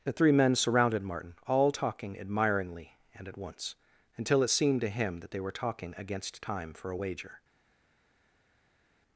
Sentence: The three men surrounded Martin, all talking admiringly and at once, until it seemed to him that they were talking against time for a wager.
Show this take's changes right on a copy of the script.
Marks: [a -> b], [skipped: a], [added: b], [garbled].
The three men surrounded Martin, all talking admiringly and at once, until it seemed to him that they were talking against time for a wager.